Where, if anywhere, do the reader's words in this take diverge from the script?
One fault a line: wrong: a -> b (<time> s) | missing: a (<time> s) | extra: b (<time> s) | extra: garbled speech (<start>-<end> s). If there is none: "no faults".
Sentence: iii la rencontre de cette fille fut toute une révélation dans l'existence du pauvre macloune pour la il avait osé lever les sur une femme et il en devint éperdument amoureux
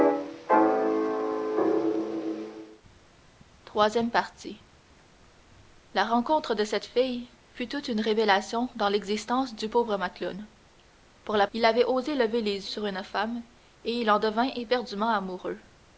no faults